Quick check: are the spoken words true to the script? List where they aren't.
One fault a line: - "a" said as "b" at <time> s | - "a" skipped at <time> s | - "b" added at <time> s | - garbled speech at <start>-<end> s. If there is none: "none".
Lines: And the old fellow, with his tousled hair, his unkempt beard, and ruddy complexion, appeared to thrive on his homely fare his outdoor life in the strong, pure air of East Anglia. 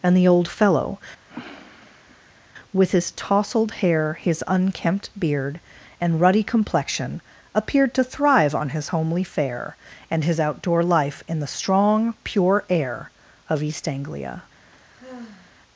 - "and" added at 10.1 s